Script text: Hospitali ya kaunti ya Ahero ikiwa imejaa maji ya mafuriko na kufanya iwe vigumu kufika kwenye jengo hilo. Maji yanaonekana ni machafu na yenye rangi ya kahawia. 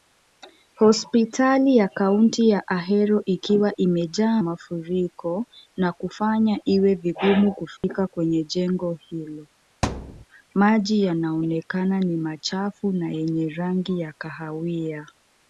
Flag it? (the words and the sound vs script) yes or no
yes